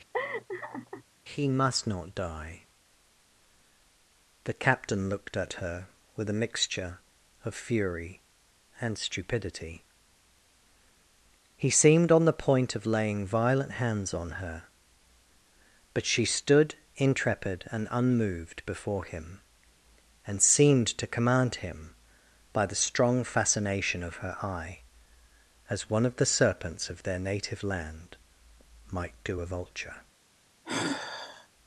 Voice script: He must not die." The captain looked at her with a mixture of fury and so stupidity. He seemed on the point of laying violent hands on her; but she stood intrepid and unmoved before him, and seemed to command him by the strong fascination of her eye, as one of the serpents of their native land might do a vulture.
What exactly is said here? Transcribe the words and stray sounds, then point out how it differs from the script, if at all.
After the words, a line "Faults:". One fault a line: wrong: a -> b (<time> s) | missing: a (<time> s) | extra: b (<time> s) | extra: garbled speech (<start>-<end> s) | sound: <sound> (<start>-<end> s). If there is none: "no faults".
He must not die." The captain looked at her with a mixture of fury and stupidity. He seemed on the point of laying violent hands on her; but she stood intrepid and unmoved before him, and seemed to command him by the strong fascination of her eye, as one of the serpents of their native land might do a vulture.
Faults:
sound: laugh (0.1-1.0 s)
missing: so (9.0 s)
sound: sigh (30.6-31.5 s)